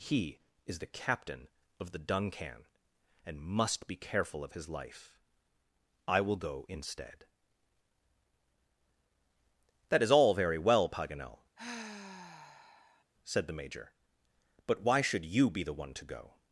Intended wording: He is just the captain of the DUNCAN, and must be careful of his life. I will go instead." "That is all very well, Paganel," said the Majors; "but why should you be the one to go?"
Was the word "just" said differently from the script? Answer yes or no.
yes